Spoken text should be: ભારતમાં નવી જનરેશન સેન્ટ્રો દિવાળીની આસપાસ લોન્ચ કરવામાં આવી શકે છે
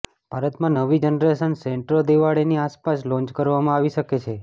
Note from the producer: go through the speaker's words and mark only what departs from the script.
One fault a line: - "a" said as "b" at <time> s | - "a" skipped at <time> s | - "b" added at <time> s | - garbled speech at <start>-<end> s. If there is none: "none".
none